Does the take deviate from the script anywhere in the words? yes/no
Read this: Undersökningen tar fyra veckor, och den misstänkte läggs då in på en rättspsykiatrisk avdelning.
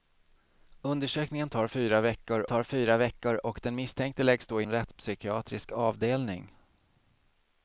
yes